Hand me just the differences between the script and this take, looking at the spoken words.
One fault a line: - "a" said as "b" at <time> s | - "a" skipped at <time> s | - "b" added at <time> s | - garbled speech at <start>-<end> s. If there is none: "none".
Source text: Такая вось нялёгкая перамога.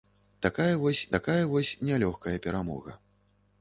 - "такая вось" added at 1.1 s